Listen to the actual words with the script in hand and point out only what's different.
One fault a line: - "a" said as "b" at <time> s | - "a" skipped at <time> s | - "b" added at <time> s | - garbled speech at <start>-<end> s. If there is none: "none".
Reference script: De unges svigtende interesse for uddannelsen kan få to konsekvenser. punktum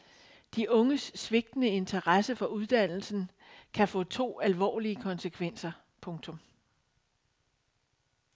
- "alvorlige" added at 4.4 s